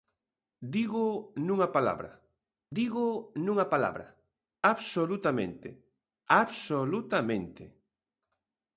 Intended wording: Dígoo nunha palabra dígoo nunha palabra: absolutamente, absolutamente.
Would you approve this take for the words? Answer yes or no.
yes